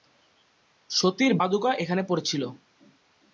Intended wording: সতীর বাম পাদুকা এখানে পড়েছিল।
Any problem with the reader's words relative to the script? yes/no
yes